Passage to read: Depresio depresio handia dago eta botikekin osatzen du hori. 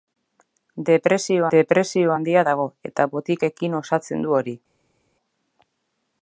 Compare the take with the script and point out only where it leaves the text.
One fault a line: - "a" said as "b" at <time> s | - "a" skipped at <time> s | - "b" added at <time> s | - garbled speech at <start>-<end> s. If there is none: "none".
none